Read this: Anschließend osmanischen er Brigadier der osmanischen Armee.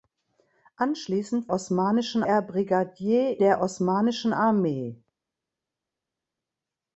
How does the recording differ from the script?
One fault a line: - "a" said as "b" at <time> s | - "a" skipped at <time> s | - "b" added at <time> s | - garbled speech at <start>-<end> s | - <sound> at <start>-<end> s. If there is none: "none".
none